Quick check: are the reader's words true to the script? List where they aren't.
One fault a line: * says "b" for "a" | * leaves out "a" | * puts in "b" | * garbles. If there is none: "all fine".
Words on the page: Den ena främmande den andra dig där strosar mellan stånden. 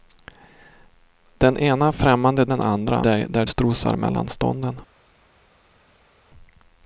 all fine